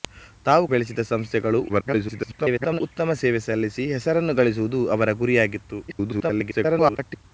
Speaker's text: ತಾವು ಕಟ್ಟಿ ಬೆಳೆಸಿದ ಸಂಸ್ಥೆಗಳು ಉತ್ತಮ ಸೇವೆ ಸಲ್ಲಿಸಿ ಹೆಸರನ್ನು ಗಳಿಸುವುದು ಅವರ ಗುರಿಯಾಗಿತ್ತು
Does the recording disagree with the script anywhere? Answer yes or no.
yes